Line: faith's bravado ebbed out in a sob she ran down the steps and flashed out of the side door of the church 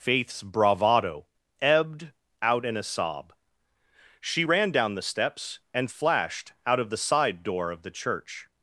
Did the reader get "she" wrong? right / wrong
right